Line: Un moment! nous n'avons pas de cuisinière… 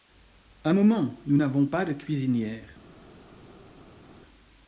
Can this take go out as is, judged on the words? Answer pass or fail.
pass